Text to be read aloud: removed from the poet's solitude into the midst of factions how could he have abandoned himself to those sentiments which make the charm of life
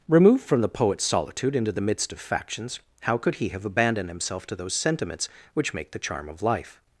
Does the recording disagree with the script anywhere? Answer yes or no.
no